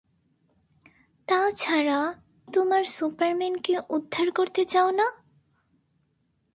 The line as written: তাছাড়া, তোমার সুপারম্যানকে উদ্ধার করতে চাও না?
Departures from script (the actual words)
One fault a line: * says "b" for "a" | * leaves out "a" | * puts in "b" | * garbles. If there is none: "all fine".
all fine